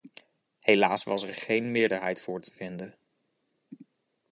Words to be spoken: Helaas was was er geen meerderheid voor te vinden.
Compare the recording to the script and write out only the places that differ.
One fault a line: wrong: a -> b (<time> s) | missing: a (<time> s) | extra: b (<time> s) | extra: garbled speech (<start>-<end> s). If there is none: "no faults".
missing: was (1.2 s)